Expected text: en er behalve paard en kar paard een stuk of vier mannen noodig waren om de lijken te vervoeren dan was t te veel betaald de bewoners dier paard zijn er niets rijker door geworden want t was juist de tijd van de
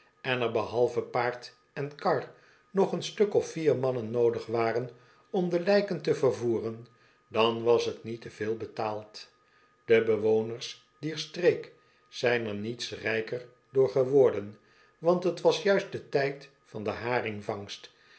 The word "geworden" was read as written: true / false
true